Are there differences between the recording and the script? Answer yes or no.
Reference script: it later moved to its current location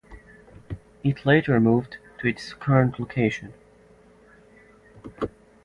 no